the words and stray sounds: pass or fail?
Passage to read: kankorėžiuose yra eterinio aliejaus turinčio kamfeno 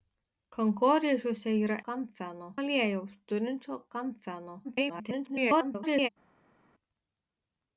fail